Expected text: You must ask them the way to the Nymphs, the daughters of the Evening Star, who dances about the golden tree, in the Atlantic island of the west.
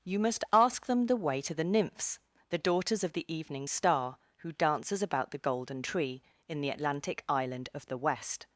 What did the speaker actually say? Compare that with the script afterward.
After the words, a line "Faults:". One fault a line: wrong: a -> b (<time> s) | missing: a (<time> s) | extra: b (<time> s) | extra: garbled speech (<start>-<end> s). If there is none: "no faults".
You must ask them the way to the Nymphs, the daughters of the Evening Star, who dances about the golden tree, in the Atlantic island of the west.
Faults:
no faults